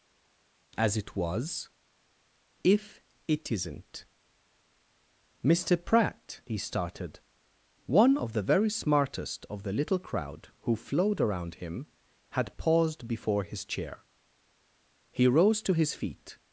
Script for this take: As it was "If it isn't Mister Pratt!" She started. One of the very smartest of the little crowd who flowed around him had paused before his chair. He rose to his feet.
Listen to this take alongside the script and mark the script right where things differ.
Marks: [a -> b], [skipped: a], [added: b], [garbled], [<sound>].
As it was "If it isn't Mister Pratt!" [She -> He] started. One of the very smartest of the little crowd who flowed around him had paused before his chair. He rose to his feet.